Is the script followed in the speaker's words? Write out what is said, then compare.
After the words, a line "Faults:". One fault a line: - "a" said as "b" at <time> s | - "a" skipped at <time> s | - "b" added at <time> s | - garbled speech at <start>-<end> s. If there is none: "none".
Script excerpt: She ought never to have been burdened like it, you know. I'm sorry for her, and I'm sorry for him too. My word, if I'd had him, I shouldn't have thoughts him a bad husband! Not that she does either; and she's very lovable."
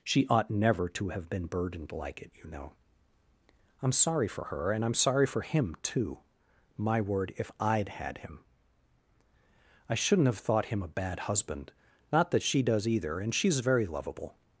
She ought never to have been burdened like it, you know. I'm sorry for her, and I'm sorry for him too. My word, if I'd had him, I shouldn't have thought him a bad husband! Not that she does either; and she's very lovable."
Faults:
- "thoughts" said as "thought" at 10.4 s